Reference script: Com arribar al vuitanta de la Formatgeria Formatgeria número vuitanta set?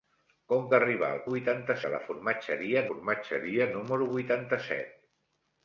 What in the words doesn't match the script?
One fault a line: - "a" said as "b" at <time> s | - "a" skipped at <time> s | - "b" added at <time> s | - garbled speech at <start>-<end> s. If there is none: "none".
none